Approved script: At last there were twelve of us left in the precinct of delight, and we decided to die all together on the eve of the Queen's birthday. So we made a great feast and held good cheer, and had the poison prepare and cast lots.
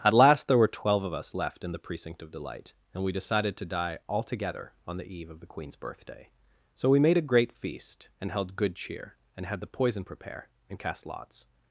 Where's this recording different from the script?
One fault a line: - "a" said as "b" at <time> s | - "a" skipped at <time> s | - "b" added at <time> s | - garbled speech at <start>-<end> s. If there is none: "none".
none